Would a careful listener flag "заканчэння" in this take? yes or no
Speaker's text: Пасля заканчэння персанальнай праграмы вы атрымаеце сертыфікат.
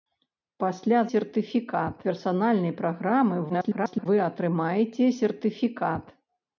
yes